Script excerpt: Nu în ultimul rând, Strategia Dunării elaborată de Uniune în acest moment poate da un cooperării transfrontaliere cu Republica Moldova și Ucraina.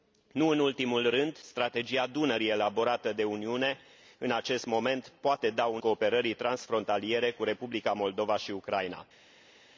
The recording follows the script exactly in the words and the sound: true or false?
true